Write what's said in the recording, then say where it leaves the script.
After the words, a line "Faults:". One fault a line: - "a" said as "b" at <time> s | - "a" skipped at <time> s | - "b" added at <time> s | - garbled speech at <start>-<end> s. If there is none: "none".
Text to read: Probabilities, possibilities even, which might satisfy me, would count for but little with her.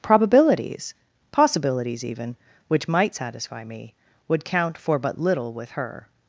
Probabilities, possibilities even, which might satisfy me, would count for but little with her.
Faults:
none